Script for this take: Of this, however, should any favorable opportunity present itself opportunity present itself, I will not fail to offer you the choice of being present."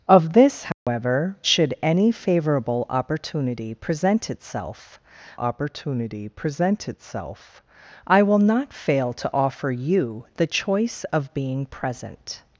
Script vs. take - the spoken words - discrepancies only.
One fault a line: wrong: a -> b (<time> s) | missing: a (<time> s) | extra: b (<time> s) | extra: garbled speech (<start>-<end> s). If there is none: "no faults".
no faults